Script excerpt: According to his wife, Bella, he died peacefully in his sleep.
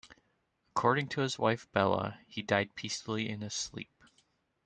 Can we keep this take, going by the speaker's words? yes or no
yes